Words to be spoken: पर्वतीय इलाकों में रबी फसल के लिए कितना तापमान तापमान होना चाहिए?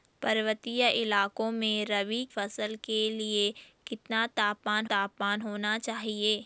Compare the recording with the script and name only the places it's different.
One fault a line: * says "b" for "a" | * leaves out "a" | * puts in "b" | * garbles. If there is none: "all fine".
all fine